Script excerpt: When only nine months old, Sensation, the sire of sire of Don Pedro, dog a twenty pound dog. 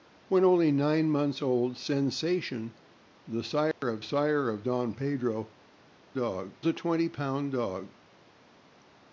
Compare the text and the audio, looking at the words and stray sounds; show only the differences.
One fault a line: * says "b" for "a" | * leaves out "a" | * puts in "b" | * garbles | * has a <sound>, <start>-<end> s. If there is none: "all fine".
* has a dropout, 3.7-3.8 s